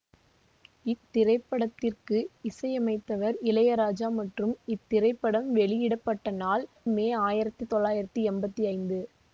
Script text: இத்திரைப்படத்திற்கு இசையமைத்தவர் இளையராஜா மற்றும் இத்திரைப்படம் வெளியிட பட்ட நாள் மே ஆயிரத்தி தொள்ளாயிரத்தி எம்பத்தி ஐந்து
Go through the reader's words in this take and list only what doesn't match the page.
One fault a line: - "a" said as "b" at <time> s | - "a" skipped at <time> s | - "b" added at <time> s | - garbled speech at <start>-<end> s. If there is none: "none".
none